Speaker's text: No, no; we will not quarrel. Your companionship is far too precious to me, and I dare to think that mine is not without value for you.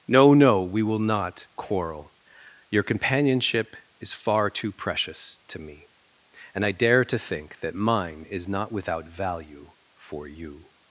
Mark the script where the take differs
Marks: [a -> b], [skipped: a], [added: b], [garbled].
No, no; we will not quarrel. Your companionship is far too precious to me, and I dare to think that mine is not without value for you.